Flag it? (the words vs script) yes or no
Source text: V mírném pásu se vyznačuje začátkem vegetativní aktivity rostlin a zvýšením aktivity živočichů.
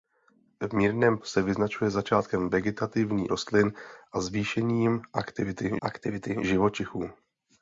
yes